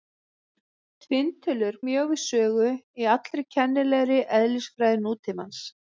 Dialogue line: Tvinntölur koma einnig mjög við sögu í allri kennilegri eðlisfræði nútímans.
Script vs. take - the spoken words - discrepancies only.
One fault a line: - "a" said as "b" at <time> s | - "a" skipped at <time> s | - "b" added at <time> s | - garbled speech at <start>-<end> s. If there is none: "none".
- "koma einnig" skipped at 1.8 s